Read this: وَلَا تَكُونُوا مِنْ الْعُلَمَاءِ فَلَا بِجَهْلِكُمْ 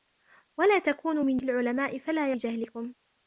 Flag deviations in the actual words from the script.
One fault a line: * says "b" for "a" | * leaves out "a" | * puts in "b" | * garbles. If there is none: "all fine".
all fine